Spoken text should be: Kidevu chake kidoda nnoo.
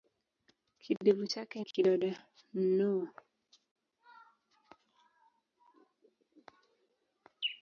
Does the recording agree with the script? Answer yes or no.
yes